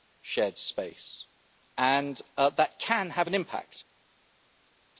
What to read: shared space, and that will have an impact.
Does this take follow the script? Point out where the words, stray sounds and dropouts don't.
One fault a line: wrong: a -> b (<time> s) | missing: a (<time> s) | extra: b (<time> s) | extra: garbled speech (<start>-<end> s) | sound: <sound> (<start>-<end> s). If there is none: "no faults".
wrong: will -> can (2.8 s)